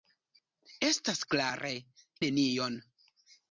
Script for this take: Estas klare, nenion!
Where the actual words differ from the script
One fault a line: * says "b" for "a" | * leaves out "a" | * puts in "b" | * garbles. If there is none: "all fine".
all fine